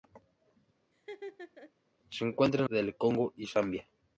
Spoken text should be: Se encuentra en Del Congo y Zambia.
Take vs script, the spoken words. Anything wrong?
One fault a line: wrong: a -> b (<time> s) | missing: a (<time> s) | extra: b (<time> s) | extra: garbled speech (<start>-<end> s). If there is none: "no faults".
no faults